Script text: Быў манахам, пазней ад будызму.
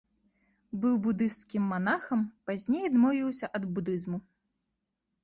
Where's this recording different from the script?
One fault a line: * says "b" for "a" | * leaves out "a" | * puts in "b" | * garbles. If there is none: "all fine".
* puts in "будысцкім"
* puts in "адмовіўся"